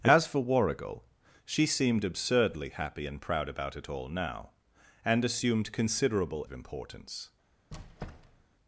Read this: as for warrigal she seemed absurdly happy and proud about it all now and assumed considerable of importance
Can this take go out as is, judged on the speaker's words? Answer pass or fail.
pass